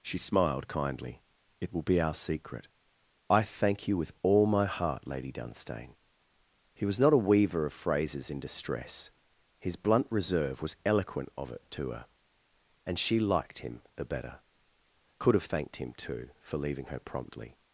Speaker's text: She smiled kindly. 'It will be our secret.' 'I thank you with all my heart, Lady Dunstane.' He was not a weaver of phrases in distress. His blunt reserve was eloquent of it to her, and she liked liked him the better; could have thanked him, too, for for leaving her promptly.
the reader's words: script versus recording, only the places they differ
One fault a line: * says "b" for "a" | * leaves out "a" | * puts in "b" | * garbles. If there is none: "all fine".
* leaves out "liked"
* leaves out "for"